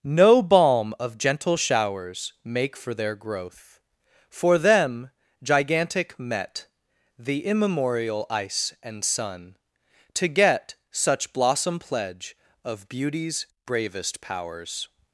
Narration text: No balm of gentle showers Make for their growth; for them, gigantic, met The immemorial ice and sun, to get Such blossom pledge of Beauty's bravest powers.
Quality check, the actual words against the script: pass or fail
pass